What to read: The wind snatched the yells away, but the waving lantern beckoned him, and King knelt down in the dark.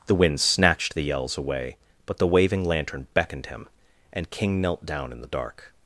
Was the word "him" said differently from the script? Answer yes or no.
no